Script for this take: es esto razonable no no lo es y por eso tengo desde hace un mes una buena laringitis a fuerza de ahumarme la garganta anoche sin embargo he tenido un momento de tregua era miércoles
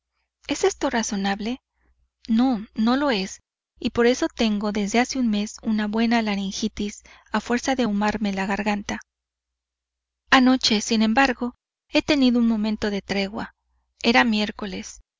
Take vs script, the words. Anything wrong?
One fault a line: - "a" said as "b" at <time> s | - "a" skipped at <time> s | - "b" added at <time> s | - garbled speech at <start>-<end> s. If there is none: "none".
none